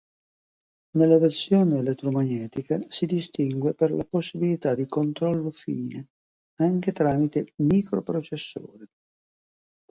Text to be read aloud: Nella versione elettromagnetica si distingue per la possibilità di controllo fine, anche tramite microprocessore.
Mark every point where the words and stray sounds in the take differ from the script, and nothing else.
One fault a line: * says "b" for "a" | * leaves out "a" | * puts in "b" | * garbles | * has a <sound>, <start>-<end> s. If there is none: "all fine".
all fine